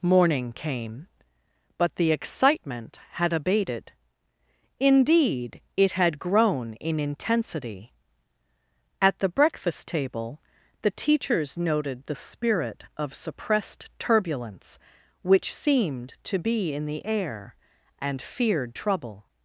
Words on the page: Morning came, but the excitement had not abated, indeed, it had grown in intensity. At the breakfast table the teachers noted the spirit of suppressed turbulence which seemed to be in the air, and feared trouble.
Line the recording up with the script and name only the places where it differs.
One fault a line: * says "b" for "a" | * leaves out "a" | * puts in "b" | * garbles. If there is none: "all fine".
* leaves out "not"